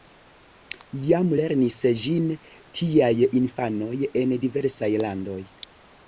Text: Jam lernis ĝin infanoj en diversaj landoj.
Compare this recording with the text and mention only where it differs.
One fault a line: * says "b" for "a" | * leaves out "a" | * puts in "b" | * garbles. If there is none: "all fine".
* puts in "tiaj"